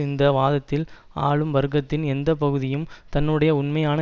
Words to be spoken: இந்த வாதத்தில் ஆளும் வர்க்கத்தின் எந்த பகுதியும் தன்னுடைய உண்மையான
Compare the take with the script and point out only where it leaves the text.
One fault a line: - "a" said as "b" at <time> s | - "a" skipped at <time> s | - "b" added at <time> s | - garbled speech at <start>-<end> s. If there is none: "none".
none